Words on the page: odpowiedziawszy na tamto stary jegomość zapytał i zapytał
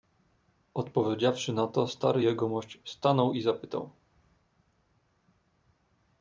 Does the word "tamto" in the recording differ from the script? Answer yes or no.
yes